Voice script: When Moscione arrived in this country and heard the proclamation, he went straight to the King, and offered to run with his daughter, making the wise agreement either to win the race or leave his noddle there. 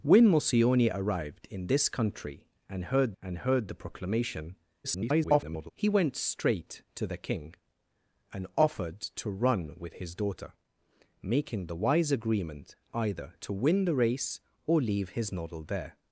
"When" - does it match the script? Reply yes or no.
yes